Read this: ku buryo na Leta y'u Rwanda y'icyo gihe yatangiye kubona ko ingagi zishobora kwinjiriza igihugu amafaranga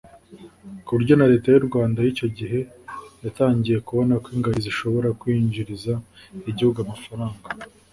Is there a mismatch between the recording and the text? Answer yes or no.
no